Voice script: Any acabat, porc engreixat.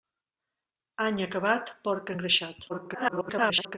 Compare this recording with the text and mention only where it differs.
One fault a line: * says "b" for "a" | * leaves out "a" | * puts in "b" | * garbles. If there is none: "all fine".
* garbles